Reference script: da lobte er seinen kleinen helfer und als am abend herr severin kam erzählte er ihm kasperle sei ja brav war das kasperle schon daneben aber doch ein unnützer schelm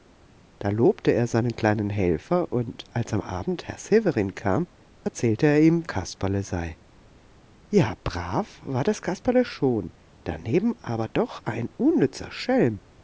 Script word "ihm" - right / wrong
right